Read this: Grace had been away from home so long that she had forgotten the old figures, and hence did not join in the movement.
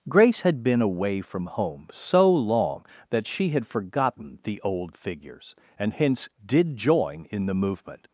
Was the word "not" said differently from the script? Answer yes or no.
yes